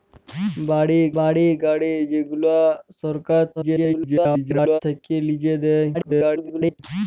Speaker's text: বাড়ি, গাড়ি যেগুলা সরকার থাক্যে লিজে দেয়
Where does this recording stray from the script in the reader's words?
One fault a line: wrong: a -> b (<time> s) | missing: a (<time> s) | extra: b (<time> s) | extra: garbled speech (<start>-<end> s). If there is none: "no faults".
extra: বাড়ি (1.2 s)
extra: garbled speech (3.6-4.8 s)
extra: garbled speech (5.9-6.8 s)